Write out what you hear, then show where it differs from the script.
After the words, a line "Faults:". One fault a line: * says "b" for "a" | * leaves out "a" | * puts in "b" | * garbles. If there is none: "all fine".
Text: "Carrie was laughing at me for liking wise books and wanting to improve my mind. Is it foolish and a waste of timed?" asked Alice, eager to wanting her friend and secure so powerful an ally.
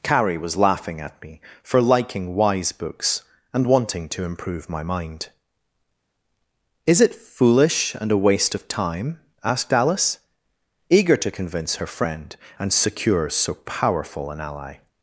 "Carrie was laughing at me for liking wise books and wanting to improve my mind. Is it foolish and a waste of time?" asked Alice, eager to convince her friend and secure so powerful an ally.
Faults:
* says "time" for "timed"
* says "convince" for "wanting"